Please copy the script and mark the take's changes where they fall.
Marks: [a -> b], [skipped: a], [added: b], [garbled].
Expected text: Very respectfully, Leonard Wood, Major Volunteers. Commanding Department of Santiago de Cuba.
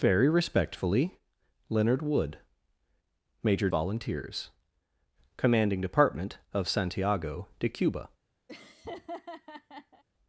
Very respectfully, Leonard Wood, Major Volunteers. Commanding Department of Santiago de Cuba.